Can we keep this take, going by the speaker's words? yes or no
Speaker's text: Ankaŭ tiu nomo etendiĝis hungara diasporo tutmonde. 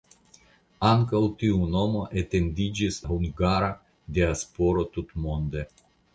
yes